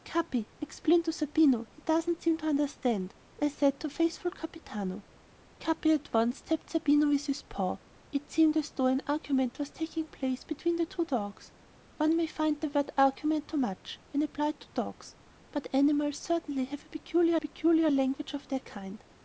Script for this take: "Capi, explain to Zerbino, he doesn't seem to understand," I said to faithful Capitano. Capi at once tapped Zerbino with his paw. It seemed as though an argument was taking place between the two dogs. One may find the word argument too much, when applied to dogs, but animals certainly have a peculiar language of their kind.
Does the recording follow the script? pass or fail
fail